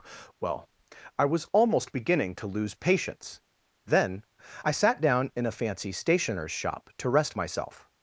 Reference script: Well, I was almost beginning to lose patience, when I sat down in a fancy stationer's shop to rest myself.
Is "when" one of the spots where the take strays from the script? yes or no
yes